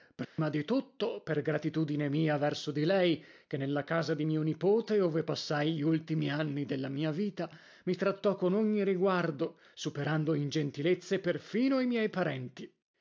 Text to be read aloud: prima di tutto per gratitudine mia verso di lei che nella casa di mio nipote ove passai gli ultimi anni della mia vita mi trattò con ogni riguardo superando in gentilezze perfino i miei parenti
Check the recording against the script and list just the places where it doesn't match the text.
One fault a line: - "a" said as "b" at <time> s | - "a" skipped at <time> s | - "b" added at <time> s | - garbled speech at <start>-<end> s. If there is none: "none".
none